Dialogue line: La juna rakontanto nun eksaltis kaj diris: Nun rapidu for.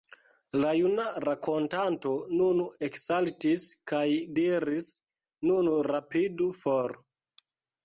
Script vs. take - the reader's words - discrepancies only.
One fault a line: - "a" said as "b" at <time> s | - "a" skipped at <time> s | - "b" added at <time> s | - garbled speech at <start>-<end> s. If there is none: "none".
none